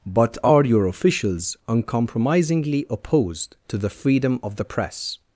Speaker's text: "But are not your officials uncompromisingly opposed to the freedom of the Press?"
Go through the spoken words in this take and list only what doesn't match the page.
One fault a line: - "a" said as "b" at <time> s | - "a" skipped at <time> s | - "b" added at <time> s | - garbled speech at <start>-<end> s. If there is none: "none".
- "not" skipped at 0.7 s